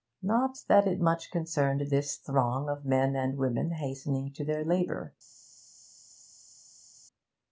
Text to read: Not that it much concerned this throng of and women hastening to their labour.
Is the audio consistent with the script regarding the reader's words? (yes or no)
no